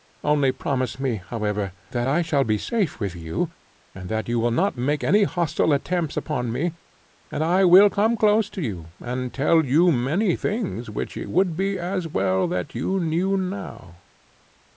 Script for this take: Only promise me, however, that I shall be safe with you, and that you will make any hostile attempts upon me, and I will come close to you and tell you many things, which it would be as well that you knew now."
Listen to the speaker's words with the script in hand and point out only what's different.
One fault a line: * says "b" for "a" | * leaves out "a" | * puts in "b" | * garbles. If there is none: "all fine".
* puts in "not"